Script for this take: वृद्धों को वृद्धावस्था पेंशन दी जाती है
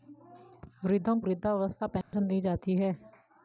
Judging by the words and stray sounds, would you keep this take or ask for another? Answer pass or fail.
fail